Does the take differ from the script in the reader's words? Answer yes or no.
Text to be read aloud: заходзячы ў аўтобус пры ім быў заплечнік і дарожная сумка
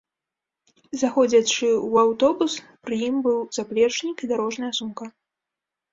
no